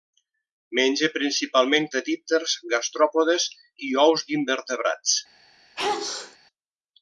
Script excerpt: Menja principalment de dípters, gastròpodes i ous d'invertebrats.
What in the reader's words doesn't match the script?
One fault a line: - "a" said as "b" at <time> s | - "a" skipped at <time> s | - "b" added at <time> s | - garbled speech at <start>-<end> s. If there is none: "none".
none